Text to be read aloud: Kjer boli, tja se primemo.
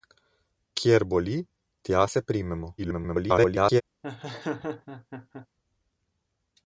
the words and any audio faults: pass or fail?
fail